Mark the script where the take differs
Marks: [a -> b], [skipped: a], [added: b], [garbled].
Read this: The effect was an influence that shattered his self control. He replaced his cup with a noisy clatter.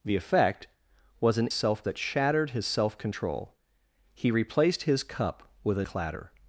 The effect was an [influence -> self] that shattered his self control. He replaced his cup with a [skipped: noisy] clatter.